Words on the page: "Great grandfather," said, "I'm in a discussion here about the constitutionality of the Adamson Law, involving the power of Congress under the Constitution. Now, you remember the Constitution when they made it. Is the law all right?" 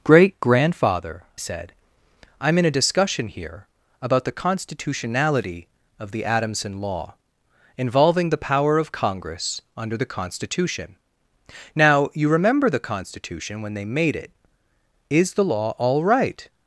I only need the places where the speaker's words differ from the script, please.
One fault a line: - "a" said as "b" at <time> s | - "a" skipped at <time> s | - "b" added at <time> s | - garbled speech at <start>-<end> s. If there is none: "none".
none